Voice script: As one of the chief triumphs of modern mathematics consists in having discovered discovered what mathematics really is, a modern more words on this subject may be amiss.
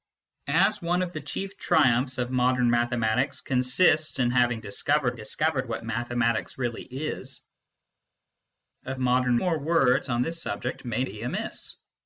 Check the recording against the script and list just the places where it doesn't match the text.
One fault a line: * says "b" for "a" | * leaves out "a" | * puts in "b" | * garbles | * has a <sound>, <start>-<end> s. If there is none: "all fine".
all fine